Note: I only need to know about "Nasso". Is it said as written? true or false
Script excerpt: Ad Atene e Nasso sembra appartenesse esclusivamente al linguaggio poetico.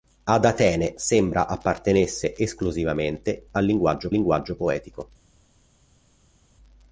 false